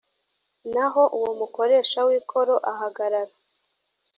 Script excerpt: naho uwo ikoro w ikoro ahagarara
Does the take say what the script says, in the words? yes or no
no